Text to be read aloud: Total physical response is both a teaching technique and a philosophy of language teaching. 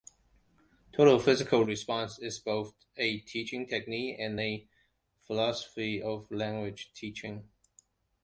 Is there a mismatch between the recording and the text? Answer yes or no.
no